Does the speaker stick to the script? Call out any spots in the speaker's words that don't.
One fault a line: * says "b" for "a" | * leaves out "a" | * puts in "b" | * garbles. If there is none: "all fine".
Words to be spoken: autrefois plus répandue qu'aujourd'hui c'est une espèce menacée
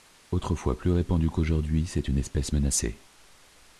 all fine